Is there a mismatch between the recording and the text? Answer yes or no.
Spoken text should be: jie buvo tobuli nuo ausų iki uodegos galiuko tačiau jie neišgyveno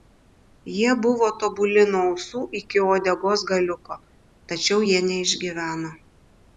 no